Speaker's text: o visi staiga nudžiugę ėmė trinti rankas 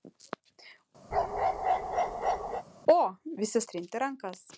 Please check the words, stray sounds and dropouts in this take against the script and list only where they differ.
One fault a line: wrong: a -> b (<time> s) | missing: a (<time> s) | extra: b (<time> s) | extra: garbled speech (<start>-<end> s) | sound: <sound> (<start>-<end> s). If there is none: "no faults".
sound: bark (1.1-2.6 s)
missing: staiga nudžiugę ėmė (3.6 s)